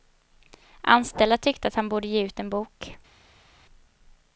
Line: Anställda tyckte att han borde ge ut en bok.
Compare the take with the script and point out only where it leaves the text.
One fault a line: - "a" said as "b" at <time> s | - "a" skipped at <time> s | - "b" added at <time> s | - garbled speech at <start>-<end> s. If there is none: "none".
none